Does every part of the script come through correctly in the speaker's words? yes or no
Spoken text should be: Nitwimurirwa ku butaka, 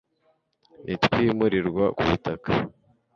yes